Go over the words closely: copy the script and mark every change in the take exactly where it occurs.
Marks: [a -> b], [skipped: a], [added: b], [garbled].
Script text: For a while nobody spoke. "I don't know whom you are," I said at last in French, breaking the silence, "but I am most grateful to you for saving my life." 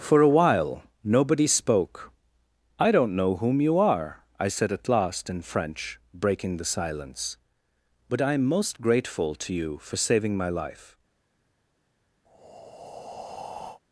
For a while nobody spoke. "I don't know whom you are," I said at last in French, breaking the silence, "but I am most grateful to you for saving my life."